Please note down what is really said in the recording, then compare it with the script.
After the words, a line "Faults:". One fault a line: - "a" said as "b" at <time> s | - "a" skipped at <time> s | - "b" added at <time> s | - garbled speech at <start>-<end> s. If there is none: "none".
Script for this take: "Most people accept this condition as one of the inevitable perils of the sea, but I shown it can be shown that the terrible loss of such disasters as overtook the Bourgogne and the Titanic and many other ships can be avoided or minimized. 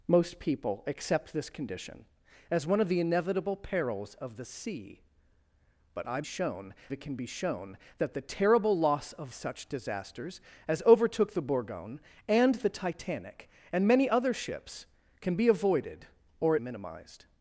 "Most people accept this condition as one of the inevitable perils of the sea, but I shown it can be shown that the terrible loss of such disasters as overtook the Bourgogne and the Titanic and many other ships can be avoided or minimized.
Faults:
none